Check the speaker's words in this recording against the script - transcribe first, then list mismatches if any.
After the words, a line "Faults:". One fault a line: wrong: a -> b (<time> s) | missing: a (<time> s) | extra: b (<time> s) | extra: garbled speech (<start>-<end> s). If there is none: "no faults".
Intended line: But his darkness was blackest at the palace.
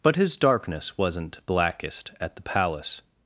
But his darkness wasn't blackest at the palace.
Faults:
wrong: was -> wasn't (1.0 s)